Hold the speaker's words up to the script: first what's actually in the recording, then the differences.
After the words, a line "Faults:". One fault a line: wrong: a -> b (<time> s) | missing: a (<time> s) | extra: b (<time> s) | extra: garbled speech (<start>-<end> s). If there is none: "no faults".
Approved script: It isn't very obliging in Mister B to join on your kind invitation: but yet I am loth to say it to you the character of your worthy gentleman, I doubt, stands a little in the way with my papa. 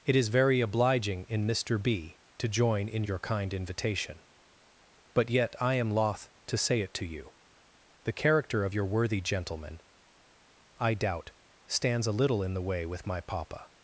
It is very obliging in Mister B to join in your kind invitation: but yet I am loth to say it to you the character of your worthy gentleman, I doubt, stands a little in the way with my papa.
Faults:
wrong: isn't -> is (0.1 s)
wrong: on -> in (2.9 s)